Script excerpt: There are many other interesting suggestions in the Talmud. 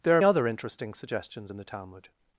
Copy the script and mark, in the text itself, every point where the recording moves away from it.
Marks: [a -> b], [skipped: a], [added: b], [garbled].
There are [skipped: many] other interesting suggestions in the Talmud.